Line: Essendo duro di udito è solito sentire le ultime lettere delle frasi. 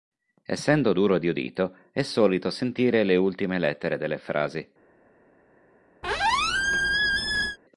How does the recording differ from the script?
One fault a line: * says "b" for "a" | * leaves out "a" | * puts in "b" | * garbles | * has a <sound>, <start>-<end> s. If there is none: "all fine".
* has a squeak, 6.0-7.6 s